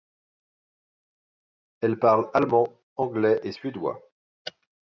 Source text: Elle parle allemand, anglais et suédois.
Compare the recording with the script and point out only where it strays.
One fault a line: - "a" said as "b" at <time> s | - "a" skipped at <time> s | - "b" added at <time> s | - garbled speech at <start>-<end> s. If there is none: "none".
none